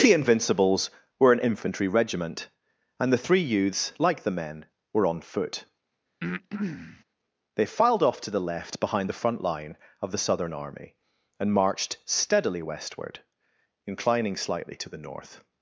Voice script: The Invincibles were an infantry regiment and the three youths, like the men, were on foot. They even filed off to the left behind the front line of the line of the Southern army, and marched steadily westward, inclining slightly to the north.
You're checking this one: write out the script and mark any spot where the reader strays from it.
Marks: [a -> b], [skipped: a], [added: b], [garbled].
The Invincibles were an infantry regiment and the three youths, like the men, were on foot. They [skipped: even] filed off to the left behind the front line of the [skipped: line of the] Southern army, and marched steadily westward, inclining slightly to the north.